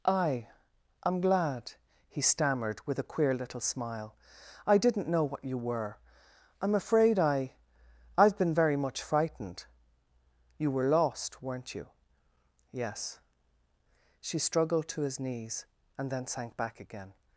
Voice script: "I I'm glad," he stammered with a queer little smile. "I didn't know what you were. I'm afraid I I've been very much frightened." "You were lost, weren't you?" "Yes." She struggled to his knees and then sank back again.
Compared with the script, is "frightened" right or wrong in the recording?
right